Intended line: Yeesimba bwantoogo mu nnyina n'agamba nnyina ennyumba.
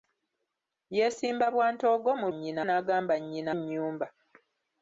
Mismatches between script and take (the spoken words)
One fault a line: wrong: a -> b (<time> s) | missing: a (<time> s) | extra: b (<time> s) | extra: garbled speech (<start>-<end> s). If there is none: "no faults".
no faults